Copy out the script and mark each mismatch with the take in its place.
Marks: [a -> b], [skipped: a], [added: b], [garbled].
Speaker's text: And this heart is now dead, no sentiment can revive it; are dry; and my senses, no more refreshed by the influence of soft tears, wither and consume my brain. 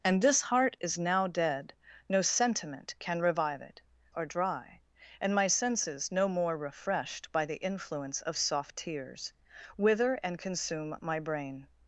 And this heart is now dead, no sentiment can revive it; are dry; and my senses, no more refreshed by the influence of soft tears, wither and consume my brain.